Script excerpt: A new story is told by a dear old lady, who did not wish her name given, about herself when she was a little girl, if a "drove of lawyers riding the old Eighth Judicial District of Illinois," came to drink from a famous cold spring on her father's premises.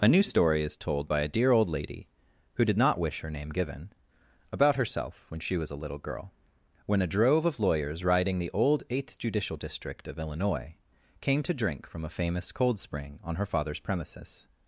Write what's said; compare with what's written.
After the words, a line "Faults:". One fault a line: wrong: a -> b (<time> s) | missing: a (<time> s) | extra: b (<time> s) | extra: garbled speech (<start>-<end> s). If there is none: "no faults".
A new story is told by a dear old lady, who did not wish her name given, about herself when she was a little girl, when a "drove of lawyers riding the old Eighth Judicial District of Illinois," came to drink from a famous cold spring on her father's premises.
Faults:
wrong: if -> when (6.9 s)